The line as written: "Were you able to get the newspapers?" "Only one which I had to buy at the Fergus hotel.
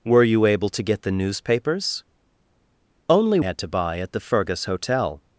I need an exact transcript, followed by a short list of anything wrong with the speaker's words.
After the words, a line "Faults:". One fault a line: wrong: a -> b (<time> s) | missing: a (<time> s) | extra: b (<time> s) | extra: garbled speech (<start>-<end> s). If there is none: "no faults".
"Were you able to get the newspapers?" "Only had to buy at the Fergus hotel.
Faults:
missing: one which I (3.4 s)